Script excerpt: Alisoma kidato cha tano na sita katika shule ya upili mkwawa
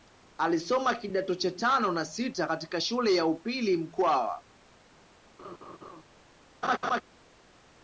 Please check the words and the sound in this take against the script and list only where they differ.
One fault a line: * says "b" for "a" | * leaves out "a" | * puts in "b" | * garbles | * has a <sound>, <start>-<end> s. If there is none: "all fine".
* has a laugh, 5.4-6.0 s
* has a laugh, 6.6-7.0 s